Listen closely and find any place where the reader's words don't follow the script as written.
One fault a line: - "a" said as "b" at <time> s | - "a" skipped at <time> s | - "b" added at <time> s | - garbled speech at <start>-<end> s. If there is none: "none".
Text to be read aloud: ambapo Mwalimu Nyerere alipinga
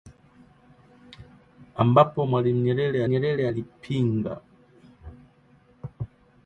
- "Nyerere" added at 3.1 s